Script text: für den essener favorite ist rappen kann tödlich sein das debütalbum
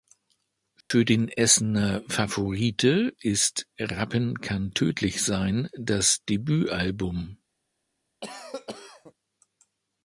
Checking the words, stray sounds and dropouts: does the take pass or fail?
fail